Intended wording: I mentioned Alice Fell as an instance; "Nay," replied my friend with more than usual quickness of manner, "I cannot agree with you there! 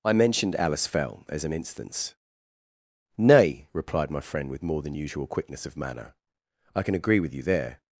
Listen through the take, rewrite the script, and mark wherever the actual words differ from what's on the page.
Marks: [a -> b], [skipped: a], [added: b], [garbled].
I mentioned Alice Fell as an instance; "Nay," replied my friend with more than usual quickness of manner, "I [cannot -> can] agree with you there!